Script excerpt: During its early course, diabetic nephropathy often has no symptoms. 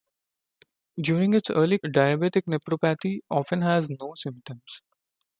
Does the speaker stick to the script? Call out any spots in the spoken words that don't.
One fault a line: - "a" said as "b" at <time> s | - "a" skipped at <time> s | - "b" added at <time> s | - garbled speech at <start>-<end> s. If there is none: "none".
- "course" skipped at 1.8 s